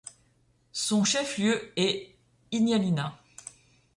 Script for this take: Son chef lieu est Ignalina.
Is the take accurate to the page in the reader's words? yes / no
yes